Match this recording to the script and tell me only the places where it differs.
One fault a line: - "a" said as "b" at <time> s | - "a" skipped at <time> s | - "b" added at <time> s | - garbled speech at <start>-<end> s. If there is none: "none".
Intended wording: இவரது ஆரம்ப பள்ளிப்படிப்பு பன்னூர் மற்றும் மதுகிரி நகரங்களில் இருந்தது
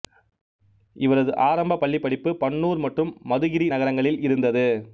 none